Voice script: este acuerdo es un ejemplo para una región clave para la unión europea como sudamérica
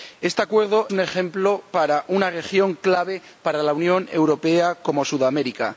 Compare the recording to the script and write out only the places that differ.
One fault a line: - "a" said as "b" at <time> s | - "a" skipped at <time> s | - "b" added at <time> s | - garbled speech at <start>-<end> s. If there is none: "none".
- "es" skipped at 0.9 s